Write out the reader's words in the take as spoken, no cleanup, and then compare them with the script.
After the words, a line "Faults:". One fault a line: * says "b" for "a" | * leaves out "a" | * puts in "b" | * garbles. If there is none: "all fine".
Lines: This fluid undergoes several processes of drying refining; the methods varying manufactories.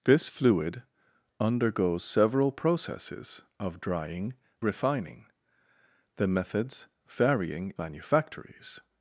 This fluid undergoes several processes of drying refining; the methods varying manufactories.
Faults:
all fine